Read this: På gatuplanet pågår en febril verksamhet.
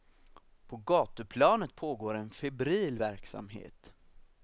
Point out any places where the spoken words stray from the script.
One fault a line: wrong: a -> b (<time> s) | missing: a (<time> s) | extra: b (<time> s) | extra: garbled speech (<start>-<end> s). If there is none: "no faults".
no faults